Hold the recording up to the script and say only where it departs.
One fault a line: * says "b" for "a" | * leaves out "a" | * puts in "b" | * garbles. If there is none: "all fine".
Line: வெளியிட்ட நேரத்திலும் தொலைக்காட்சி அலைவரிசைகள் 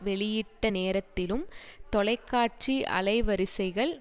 all fine